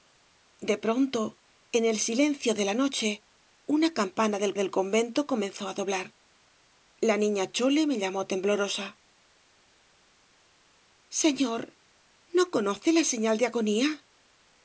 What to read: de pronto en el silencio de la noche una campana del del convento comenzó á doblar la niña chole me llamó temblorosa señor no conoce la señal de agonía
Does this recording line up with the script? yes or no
yes